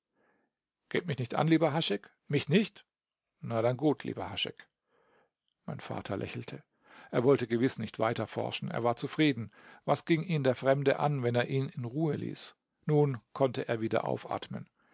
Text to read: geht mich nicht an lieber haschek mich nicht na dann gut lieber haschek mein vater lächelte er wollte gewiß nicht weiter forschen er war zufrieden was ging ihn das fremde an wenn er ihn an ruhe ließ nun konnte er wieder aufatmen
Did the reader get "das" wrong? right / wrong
wrong